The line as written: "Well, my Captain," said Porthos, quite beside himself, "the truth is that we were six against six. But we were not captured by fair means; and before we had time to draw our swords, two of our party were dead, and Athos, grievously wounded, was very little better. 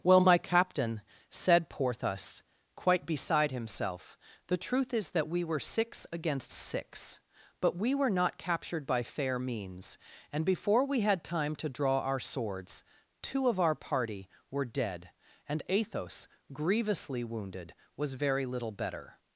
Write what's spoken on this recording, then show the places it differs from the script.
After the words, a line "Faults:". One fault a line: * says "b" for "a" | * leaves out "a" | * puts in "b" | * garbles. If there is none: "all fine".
"Well, my Captain," said Porthos, quite beside himself, "the truth is that we were six against six. But we were not captured by fair means; and before we had time to draw our swords, two of our party were dead, and Athos, grievously wounded, was very little better.
Faults:
all fine